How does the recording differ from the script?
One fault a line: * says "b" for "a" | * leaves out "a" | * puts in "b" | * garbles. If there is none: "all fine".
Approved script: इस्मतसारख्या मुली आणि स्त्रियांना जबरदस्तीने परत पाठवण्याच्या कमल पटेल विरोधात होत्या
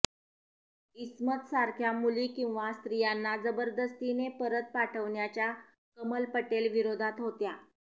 * says "किंवा" for "आणि"